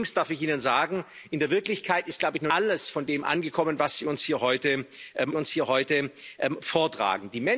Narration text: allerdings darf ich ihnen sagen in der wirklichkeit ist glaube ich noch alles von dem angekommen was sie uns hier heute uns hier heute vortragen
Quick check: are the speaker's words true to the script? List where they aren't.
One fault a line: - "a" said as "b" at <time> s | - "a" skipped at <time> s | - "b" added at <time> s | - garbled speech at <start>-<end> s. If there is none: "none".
none